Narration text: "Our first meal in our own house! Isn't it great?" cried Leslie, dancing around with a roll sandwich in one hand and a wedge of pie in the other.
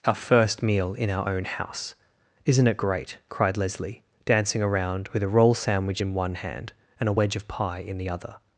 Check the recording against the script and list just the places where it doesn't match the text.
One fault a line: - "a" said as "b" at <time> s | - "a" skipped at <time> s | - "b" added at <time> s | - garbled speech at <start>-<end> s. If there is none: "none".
none